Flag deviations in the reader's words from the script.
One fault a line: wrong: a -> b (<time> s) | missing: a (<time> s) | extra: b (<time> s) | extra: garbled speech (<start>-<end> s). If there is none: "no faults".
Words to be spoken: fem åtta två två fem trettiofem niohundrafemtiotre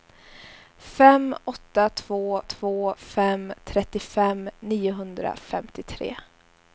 no faults